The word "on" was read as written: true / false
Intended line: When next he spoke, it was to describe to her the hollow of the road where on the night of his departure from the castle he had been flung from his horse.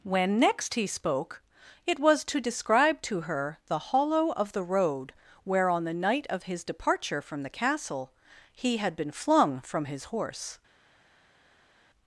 true